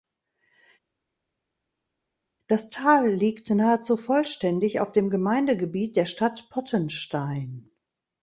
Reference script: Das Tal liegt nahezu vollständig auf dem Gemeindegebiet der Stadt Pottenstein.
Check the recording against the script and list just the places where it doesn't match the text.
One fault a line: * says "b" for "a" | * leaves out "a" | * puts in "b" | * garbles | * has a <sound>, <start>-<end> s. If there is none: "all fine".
all fine